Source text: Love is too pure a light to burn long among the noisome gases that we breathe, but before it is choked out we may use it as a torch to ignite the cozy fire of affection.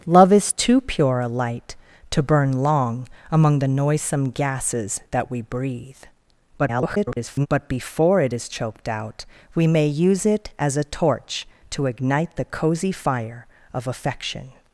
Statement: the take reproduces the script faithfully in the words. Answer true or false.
false